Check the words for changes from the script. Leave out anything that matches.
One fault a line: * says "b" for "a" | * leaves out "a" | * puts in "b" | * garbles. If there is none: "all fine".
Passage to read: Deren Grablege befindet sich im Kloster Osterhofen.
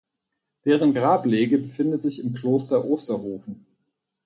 all fine